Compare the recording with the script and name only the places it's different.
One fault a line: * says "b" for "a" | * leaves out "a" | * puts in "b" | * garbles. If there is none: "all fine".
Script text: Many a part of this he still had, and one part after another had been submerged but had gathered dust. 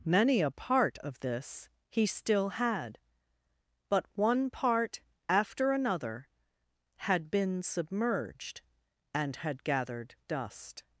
* says "but" for "and"
* says "and" for "but"